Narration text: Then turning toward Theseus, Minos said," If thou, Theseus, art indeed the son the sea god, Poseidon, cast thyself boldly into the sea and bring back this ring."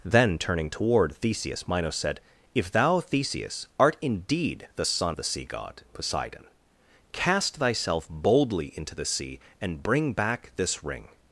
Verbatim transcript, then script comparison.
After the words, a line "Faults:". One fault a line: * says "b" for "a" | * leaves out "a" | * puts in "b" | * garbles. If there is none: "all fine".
Then turning toward Theseus, Minos said," If thou, Theseus, art indeed the son the sea god, Poseidon, cast thyself boldly into the sea and bring back this ring."
Faults:
all fine